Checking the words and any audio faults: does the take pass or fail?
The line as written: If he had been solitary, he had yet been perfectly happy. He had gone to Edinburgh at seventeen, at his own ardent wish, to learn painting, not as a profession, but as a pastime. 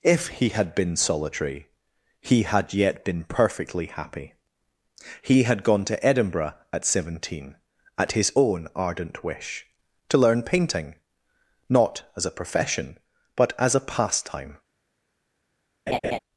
fail